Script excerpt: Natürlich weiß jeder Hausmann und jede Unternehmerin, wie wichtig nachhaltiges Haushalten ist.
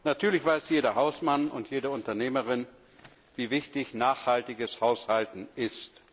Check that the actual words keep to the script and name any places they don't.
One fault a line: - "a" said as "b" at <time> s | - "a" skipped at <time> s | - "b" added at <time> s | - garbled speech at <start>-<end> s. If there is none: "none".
none